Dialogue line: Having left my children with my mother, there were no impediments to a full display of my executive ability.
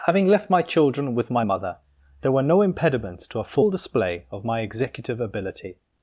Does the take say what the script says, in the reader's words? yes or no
yes